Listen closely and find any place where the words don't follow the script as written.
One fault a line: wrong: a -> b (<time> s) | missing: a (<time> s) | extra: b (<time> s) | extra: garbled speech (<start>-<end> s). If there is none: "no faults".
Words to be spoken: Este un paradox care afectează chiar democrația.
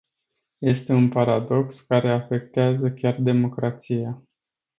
no faults